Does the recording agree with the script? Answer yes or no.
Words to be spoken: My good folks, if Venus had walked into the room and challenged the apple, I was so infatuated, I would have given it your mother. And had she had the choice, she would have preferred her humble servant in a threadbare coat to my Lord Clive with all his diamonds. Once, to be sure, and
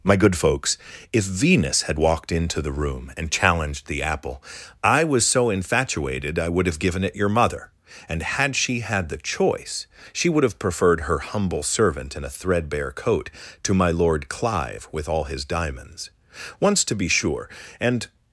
yes